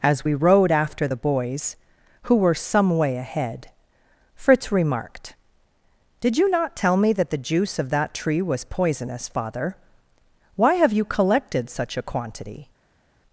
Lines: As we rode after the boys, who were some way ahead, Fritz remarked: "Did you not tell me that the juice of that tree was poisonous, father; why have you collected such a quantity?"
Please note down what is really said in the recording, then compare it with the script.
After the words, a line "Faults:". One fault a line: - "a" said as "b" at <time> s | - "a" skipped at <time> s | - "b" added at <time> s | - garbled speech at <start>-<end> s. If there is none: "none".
As we rode after the boys, who were some way ahead, Fritz remarked: "Did you not tell me that the juice of that tree was poisonous, father; why have you collected such a quantity?"
Faults:
none